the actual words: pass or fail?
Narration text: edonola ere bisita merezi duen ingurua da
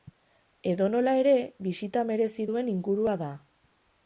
pass